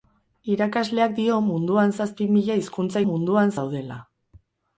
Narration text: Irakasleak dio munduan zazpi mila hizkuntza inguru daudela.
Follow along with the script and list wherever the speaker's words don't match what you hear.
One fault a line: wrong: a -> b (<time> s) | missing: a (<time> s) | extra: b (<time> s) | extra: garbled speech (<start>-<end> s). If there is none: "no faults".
wrong: inguru -> munduan (3.1 s)